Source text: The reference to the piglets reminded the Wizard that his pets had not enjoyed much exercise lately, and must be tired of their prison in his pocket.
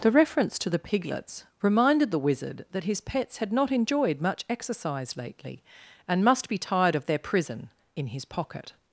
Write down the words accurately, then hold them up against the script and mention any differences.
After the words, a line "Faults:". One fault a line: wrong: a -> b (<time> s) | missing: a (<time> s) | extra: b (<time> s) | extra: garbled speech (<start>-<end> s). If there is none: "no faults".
The reference to the piglets reminded the Wizard that his pets had not enjoyed much exercise lately, and must be tired of their prison in his pocket.
Faults:
no faults